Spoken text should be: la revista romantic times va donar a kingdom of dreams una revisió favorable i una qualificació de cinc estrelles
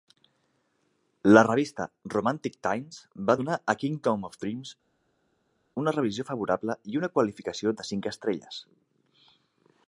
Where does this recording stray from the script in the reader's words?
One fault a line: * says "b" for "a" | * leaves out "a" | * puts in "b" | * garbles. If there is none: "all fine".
all fine